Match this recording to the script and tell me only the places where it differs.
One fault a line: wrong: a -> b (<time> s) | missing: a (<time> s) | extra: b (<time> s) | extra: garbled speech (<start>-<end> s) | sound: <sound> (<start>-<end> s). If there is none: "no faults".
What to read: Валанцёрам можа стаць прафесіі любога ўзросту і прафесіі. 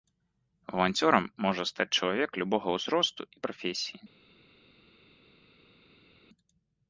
wrong: прафесіі -> чалавек (2.0 s)